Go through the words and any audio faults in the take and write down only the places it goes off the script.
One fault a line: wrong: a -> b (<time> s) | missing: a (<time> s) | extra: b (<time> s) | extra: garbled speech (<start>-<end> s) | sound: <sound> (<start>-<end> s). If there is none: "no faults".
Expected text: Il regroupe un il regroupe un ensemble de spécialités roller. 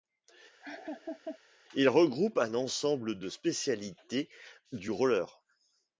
sound: laugh (0.6-1.4 s)
missing: il regroupe un (2.5 s)
extra: du (4.7 s)